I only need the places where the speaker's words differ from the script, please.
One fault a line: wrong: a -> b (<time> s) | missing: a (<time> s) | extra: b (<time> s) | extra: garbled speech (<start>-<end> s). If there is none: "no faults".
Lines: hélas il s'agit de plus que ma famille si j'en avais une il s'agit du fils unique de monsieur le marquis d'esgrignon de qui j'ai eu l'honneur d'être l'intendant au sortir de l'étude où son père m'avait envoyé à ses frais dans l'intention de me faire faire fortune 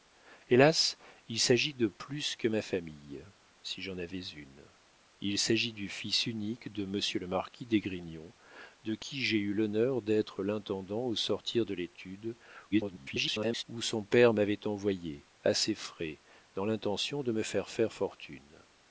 extra: garbled speech (12.7-13.6 s)